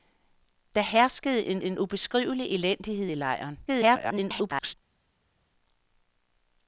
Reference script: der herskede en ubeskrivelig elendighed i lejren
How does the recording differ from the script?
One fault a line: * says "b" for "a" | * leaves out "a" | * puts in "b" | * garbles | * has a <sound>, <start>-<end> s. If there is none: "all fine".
* puts in "en"
* garbles